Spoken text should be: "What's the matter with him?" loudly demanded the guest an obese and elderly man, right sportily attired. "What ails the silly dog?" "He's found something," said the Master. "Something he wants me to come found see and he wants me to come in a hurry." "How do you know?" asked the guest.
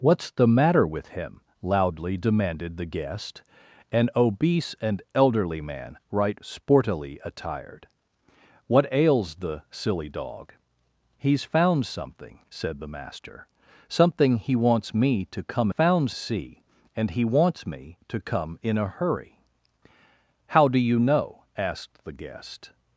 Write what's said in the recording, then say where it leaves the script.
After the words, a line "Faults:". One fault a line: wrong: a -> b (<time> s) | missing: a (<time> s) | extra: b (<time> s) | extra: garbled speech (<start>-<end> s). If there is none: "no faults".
"What's the matter with him?" loudly demanded the guest an obese and elderly man, right sportily attired. "What ails the silly dog?" "He's found something," said the Master. "Something he wants me to come found see and he wants me to come in a hurry." "How do you know?" asked the guest.
Faults:
no faults